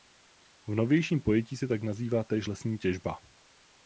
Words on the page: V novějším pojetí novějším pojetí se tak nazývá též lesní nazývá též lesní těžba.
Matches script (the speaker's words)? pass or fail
fail